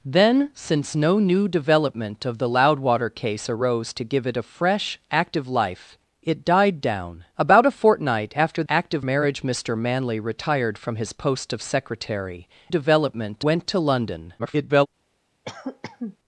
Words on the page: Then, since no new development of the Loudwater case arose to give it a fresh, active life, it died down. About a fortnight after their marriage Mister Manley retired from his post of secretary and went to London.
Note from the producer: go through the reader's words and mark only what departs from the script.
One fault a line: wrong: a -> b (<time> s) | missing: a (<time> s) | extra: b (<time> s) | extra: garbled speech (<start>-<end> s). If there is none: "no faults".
wrong: their -> active (8.7 s)
wrong: and -> development (12.7 s)
extra: garbled speech (14.4-14.9 s)